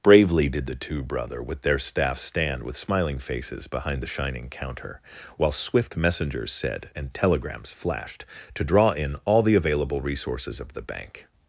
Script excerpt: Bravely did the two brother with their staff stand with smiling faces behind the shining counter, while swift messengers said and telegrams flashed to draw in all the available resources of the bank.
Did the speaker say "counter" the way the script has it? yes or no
yes